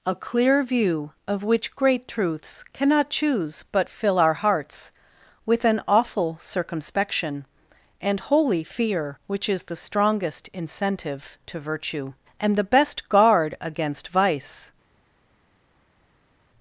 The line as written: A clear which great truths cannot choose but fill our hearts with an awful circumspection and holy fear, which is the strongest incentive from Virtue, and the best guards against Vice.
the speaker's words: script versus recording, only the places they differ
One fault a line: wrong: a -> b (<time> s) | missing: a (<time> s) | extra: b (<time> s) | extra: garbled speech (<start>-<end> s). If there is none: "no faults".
extra: view of (0.6 s)
wrong: from -> to (11.5 s)
wrong: guards -> guard (13.1 s)